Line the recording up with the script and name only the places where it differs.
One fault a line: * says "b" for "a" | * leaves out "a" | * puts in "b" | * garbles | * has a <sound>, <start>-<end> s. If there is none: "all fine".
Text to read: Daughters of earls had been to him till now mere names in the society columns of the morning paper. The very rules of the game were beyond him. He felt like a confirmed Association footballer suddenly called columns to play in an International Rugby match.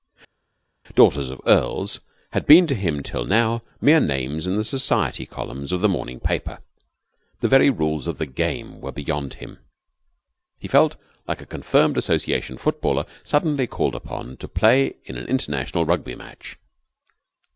* says "upon" for "columns"